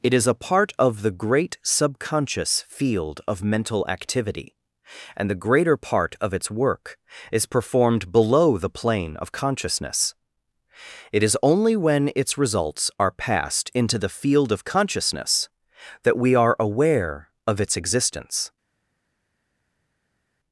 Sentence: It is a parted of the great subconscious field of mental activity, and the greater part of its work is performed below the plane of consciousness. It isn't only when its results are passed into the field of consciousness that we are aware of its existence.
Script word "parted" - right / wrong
wrong